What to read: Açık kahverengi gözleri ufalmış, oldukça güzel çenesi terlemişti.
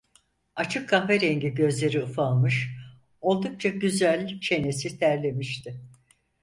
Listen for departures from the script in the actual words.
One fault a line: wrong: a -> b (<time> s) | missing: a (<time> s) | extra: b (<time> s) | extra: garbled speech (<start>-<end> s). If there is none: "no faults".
no faults